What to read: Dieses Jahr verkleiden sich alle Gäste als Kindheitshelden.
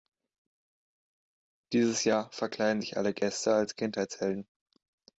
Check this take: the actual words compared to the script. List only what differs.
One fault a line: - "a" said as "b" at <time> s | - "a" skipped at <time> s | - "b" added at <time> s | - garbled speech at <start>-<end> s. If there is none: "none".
none